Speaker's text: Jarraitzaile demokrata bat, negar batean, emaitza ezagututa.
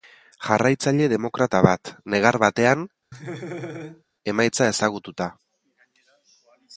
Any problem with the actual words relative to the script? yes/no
no